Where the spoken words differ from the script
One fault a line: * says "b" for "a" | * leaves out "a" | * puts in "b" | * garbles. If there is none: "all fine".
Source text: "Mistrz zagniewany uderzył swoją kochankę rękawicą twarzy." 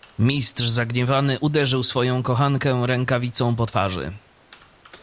* puts in "po"